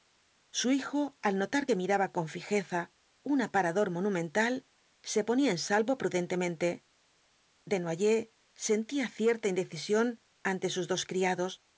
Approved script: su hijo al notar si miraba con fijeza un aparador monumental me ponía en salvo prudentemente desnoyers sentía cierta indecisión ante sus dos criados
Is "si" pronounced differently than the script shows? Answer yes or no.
yes